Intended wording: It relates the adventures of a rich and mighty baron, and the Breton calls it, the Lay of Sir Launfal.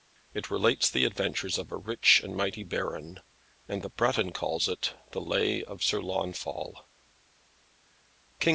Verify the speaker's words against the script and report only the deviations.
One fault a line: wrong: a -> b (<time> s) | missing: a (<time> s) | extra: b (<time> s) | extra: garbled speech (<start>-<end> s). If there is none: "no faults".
no faults